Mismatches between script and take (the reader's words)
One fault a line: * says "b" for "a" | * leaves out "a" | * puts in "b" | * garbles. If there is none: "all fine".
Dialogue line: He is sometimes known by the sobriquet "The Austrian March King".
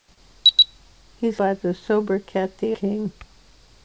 * leaves out "sometimes known"
* leaves out "Austrian March"